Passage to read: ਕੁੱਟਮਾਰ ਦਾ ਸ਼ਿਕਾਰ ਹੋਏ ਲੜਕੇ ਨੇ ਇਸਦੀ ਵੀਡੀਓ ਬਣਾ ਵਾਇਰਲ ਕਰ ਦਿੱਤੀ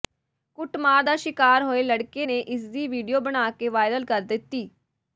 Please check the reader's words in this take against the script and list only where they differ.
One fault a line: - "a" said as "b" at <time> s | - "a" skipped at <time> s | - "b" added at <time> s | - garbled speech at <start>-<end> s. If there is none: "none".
- "ਕੇ" added at 3.5 s